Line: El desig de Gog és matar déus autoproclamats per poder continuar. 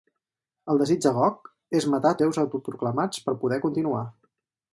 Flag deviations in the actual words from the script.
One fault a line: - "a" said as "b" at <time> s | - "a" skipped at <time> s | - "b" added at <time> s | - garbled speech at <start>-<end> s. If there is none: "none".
none